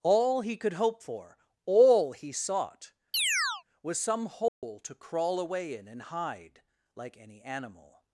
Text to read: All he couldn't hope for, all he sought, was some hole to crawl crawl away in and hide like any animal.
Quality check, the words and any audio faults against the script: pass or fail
fail